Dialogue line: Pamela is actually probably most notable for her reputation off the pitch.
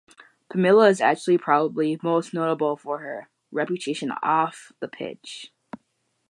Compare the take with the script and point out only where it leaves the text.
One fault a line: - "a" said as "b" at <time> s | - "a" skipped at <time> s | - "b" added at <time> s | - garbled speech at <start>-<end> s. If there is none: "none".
none